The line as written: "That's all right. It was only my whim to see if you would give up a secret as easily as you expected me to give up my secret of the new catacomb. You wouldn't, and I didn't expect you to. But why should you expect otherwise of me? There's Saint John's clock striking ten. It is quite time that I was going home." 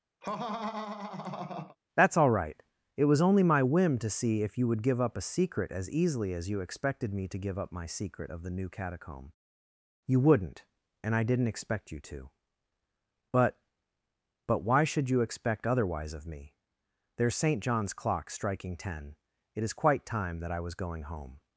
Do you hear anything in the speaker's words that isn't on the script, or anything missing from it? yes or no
yes